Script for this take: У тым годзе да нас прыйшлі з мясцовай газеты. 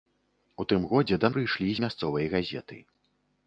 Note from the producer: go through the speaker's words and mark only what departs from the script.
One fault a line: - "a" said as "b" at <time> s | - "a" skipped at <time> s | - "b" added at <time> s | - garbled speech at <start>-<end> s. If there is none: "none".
- "нас" skipped at 1.3 s